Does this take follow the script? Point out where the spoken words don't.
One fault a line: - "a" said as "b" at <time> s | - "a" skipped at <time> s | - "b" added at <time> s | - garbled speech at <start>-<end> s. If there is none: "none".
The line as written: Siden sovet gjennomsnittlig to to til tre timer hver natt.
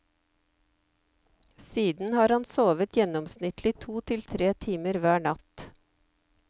- "har han" added at 2.1 s
- "to" skipped at 4.0 s